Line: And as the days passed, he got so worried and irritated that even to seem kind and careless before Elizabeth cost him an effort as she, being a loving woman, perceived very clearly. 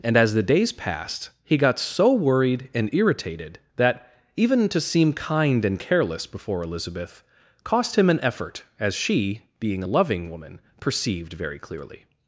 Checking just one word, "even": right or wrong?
right